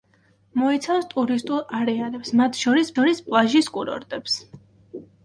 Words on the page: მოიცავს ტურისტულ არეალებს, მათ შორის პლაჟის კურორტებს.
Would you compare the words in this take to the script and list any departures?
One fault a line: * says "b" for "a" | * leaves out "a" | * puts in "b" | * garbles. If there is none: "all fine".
* puts in "შორის"